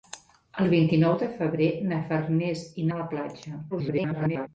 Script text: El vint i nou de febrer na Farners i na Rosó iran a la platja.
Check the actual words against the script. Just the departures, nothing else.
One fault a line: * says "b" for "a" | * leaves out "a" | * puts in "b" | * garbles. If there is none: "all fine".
* leaves out "na Rosó iran"
* garbles